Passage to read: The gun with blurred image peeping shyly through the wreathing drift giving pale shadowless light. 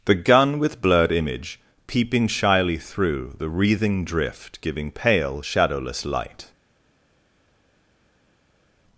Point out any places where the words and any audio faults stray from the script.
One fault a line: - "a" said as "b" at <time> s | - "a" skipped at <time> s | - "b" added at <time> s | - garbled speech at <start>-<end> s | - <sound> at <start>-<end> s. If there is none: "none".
none